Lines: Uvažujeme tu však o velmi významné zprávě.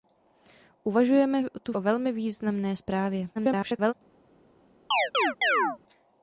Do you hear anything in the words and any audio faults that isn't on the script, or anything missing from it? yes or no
yes